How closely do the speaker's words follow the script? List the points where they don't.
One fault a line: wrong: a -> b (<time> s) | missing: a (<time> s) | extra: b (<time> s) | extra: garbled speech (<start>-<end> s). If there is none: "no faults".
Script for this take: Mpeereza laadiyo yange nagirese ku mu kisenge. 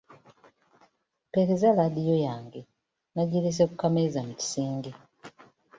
extra: kameeza (3.8 s)